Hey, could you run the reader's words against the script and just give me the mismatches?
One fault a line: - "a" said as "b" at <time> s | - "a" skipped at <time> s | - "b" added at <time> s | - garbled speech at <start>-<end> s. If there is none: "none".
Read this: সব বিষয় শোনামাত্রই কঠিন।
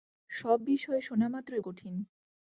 none